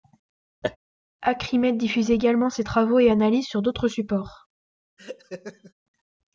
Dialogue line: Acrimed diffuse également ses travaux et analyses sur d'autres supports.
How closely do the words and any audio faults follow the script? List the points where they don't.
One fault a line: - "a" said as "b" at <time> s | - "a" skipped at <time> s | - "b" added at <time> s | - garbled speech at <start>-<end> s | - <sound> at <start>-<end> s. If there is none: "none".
- laugh at 0.6-0.8 s
- laugh at 5.0-5.7 s